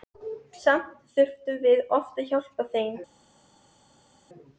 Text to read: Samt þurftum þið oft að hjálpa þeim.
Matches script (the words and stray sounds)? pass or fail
fail